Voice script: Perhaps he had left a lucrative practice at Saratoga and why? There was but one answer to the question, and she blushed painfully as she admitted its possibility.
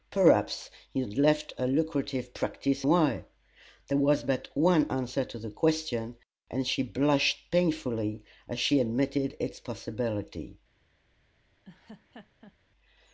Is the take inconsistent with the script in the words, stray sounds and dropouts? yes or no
yes